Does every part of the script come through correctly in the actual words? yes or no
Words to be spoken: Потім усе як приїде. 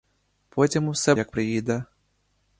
yes